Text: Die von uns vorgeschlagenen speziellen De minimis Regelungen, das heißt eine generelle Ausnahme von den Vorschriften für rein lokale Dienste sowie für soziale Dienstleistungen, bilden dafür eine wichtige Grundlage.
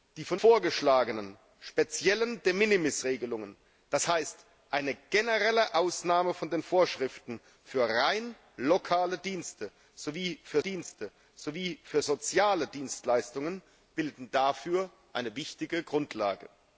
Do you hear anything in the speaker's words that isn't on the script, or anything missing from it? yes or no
yes